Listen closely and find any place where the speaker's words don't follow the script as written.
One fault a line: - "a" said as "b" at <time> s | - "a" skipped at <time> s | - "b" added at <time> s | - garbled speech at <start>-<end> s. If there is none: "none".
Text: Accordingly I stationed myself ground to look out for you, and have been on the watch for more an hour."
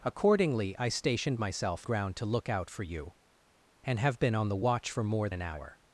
none